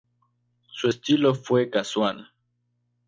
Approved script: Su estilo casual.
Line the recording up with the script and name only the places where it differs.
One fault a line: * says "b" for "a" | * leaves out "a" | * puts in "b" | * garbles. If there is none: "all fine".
* puts in "fue"